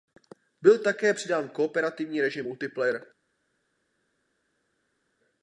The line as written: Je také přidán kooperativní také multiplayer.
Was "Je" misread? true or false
true